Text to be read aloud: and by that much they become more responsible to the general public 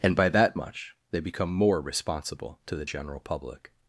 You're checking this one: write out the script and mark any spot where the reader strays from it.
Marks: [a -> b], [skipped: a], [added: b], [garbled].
and by that much they become more responsible to the general public